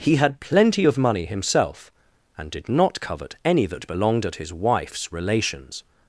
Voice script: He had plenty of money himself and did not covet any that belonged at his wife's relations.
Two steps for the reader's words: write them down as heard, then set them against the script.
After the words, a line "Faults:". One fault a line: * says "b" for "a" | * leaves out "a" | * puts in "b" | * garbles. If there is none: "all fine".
He had plenty of money himself and did not covet any that belonged at his wife's relations.
Faults:
all fine